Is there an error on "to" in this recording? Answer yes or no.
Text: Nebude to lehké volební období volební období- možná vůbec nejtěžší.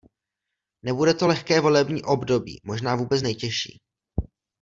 no